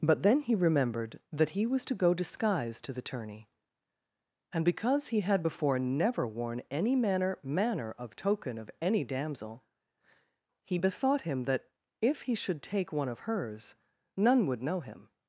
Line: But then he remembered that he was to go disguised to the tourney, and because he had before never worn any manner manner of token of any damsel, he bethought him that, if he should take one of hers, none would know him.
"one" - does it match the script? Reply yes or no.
yes